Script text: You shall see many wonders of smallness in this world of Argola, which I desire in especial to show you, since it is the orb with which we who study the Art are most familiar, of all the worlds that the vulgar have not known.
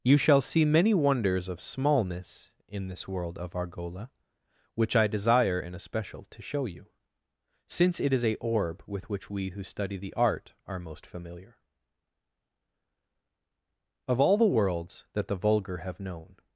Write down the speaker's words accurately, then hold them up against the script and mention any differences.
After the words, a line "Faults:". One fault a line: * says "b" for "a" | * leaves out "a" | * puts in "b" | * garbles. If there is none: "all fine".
You shall see many wonders of smallness in this world of Argola, which I desire in especial to show you, since it is a orb with which we who study the Art are most familiar, of all the worlds that the vulgar have known.
Faults:
* says "a" for "the"
* leaves out "not"